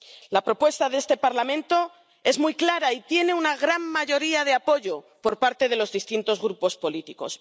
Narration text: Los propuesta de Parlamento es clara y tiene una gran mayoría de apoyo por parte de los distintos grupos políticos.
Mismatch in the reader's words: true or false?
true